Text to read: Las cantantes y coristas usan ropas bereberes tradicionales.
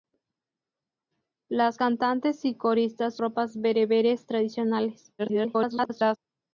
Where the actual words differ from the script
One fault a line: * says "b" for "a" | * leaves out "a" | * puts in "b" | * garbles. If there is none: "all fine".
* leaves out "usan"
* garbles